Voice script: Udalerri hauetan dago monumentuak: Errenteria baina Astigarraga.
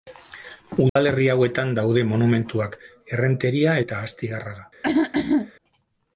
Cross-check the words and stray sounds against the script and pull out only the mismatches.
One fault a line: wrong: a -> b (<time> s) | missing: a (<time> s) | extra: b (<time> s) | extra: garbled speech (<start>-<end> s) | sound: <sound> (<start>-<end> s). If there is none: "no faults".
sound: dropout (0.9-1.0 s)
wrong: dago -> daude (1.8 s)
wrong: baina -> eta (3.8 s)
sound: throat clearing (4.8-5.5 s)